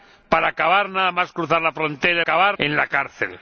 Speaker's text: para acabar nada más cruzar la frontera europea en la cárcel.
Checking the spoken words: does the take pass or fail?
fail